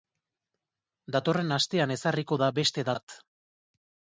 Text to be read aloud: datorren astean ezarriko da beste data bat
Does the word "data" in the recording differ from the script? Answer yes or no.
yes